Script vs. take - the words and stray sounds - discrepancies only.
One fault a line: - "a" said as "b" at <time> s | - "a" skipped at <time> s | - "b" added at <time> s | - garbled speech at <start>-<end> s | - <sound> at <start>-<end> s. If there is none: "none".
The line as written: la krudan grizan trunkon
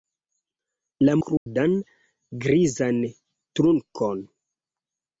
- dropout at 1.4-1.5 s